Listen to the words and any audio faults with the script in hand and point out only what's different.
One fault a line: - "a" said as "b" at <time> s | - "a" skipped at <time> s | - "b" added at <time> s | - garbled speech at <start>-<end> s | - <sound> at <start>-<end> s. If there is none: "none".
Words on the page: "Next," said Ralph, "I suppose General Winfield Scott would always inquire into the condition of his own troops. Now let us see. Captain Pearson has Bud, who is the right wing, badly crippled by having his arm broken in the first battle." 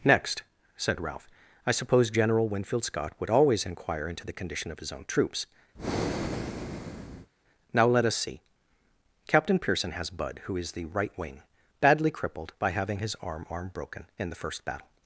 - breath at 5.7-7.3 s
- "arm" added at 13.5 s